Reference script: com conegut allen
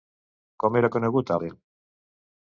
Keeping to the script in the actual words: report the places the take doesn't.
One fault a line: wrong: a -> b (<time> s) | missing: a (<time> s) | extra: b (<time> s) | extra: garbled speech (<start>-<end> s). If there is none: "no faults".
extra: era (0.8 s)